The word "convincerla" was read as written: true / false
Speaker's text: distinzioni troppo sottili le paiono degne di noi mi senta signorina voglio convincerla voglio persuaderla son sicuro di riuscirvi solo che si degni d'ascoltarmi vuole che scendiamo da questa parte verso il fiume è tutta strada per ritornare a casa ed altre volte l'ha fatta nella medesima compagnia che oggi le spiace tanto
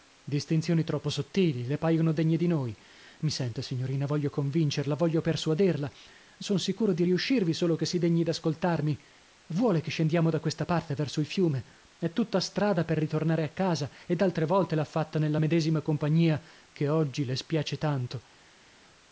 true